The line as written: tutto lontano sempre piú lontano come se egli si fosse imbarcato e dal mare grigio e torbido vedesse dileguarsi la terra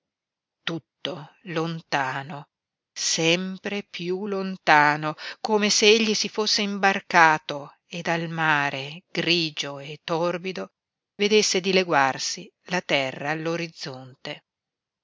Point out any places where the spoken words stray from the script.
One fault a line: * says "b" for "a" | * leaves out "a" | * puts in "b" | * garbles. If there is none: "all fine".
all fine